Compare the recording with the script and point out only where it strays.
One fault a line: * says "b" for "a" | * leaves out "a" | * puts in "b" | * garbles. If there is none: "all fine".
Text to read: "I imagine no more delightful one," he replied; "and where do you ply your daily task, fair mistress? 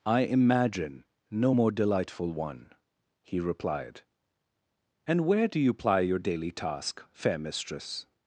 all fine